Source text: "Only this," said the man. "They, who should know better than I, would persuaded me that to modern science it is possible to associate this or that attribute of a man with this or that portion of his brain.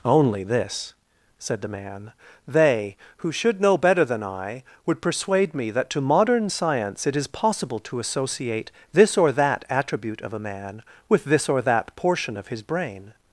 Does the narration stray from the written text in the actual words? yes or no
yes